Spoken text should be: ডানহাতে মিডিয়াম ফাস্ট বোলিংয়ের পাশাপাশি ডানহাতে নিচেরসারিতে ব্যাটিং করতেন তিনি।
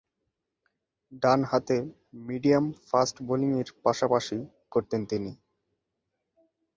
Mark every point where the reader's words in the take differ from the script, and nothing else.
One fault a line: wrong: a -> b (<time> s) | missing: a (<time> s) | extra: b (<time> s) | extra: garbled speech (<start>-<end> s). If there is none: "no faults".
missing: ডানহাতে নিচেরসারিতে ব্যাটিং (4.4 s)